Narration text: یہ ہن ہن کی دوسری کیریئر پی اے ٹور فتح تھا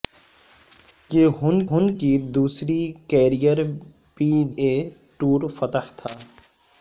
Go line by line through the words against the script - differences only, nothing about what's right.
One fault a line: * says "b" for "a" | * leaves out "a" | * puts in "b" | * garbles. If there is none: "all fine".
all fine